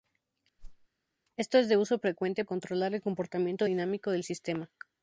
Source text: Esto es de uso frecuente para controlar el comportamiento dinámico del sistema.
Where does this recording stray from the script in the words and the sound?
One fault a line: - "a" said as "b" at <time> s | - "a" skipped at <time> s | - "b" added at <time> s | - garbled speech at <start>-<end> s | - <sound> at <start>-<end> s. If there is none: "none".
- whoosh at 0.6-0.9 s
- "para" skipped at 2.4 s